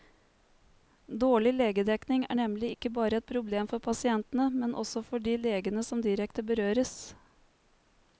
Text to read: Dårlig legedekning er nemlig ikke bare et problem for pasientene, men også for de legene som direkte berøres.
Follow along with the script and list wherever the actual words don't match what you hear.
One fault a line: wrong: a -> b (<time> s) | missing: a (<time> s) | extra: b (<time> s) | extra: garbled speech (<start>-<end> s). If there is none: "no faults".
no faults